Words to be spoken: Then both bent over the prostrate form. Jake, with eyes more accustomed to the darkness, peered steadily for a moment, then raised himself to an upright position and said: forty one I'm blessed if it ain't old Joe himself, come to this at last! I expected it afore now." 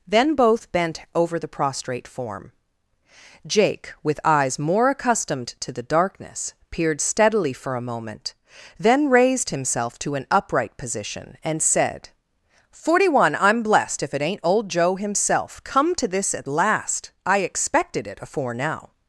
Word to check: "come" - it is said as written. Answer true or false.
true